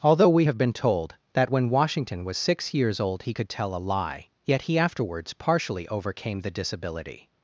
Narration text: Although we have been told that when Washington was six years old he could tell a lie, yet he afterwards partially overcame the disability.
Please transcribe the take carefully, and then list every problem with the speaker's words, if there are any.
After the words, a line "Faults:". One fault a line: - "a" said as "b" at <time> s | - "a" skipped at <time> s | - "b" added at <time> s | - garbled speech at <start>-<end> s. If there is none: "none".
Although we have been told that when Washington was six years old he could tell a lie, yet he afterwards partially overcame the disability.
Faults:
none